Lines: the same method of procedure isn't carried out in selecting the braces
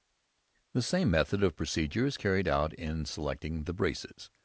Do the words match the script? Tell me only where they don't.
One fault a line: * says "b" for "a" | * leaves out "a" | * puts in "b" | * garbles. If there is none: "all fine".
* says "is" for "isn't"